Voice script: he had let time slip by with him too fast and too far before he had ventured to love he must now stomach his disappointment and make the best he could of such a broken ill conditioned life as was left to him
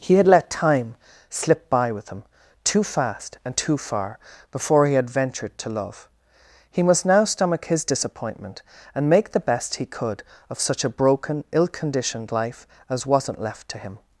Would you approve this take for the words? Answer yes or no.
no